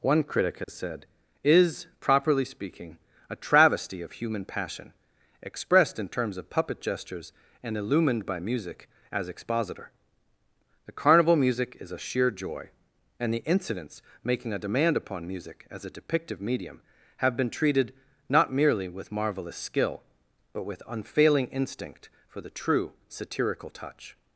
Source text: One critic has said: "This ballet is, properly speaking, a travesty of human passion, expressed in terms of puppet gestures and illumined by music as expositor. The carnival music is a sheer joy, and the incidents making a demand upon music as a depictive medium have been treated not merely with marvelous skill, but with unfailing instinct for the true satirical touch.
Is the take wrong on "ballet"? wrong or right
wrong